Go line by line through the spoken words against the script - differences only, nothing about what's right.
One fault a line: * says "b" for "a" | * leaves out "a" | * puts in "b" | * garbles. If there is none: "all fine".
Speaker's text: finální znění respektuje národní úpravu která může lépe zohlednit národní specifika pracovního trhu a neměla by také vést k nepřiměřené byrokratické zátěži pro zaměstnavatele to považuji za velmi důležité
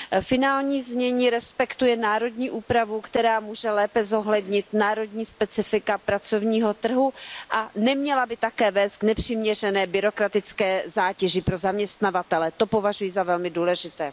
all fine